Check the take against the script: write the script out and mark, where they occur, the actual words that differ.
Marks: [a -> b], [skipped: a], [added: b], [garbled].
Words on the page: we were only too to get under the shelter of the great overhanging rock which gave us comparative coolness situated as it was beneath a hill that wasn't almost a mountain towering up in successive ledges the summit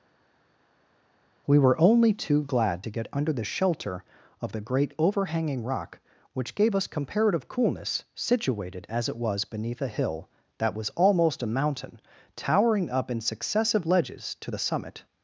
we were only too [added: glad] to get under the shelter of the great overhanging rock which gave us comparative coolness situated as it was beneath a hill that [wasn't -> was] almost a mountain towering up in successive ledges [added: to] the summit